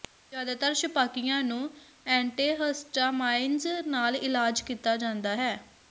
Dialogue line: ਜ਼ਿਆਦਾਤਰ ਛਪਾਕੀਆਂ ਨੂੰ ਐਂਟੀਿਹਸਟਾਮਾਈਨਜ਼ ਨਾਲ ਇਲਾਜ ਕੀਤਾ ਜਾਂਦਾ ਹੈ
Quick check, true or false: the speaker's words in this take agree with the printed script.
true